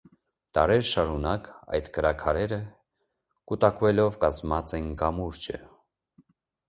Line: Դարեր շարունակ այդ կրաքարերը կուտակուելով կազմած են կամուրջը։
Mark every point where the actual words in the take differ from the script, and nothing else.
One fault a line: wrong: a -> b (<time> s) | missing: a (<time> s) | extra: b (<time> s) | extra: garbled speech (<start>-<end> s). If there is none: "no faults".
no faults